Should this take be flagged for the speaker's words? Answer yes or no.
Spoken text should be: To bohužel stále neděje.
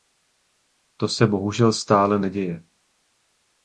yes